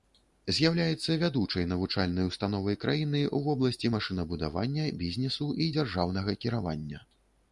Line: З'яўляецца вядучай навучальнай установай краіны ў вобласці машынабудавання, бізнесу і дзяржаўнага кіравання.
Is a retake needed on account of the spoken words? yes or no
no